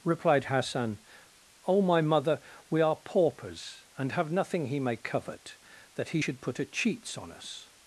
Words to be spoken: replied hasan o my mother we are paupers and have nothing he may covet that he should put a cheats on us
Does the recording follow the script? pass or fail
pass